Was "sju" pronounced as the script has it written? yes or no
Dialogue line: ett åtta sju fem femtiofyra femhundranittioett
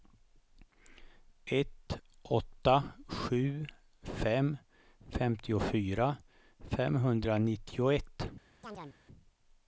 yes